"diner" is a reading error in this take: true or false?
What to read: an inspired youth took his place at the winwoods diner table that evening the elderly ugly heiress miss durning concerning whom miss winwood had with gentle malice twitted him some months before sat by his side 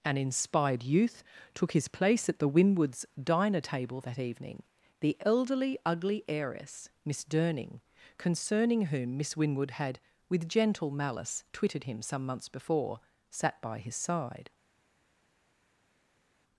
false